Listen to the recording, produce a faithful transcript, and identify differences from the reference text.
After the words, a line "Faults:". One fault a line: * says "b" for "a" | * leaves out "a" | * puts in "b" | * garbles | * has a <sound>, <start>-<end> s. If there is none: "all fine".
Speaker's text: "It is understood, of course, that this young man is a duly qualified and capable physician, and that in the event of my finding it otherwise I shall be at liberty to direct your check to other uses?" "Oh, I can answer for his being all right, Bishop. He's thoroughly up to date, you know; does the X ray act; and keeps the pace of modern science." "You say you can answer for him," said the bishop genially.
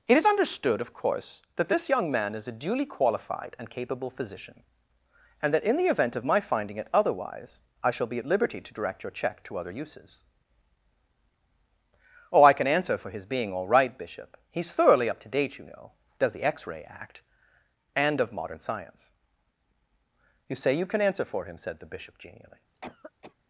"It is understood, of course, that this young man is a duly qualified and capable physician, and that in the event of my finding it otherwise I shall be at liberty to direct your check to other uses?" "Oh, I can answer for his being all right, Bishop. He's thoroughly up to date, you know; does the X ray act; and of modern science." "You say you can answer for him," said the bishop genially.
Faults:
* leaves out "keeps the pace"
* has a cough, 22.7-23.3 s